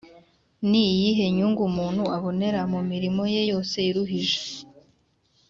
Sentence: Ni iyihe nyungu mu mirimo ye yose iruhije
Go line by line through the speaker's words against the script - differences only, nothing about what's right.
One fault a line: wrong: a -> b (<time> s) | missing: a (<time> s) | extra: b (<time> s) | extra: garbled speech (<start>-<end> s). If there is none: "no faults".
extra: umuntu abonera (1.7 s)